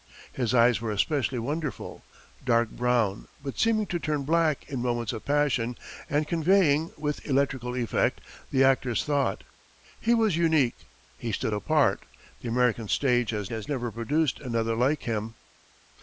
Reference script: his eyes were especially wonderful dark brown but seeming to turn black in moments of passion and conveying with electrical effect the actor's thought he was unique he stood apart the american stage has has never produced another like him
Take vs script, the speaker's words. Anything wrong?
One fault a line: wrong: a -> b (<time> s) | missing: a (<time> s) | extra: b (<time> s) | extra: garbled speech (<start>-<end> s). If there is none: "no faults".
no faults